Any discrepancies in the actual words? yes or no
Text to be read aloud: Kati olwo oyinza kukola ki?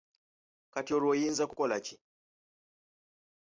no